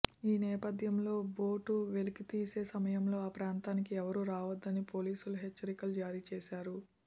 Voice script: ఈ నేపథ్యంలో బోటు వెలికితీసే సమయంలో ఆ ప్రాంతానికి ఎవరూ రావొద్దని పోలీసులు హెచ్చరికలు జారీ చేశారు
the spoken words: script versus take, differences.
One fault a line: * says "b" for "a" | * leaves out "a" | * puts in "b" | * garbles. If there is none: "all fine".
all fine